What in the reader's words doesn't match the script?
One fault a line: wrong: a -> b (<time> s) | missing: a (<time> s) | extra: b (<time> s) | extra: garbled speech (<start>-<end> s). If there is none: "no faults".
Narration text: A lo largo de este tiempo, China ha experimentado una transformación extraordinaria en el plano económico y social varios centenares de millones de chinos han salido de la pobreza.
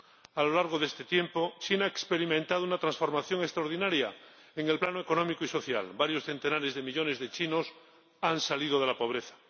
no faults